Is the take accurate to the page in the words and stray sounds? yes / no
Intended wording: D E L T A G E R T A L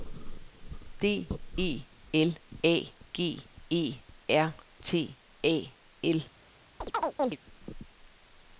no